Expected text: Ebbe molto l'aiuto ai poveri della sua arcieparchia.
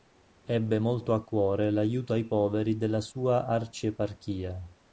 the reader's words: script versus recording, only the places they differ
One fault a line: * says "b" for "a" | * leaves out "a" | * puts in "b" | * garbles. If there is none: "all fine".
* puts in "a cuore"